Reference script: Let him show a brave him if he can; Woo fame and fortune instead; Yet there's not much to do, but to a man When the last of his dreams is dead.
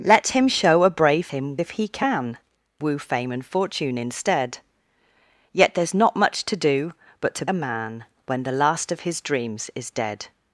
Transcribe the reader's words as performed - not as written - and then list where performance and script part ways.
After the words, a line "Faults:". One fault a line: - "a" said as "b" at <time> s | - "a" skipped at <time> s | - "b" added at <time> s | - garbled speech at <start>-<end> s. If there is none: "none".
Let him show a brave him if he can; Woo fame and fortune instead; Yet there's not much to do, but to a man When the last of his dreams is dead.
Faults:
none